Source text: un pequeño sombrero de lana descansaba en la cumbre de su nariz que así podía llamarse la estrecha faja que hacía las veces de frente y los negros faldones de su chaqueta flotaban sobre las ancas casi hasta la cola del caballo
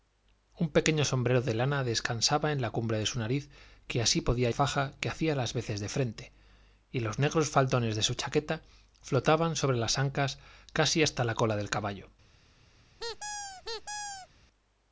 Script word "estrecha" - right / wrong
wrong